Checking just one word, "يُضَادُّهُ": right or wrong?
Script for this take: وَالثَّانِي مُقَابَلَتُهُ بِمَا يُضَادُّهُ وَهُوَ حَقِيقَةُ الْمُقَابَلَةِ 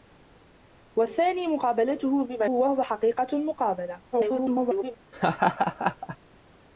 wrong